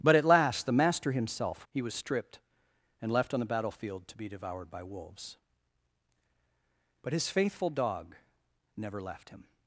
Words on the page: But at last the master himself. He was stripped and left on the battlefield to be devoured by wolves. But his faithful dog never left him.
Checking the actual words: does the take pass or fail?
pass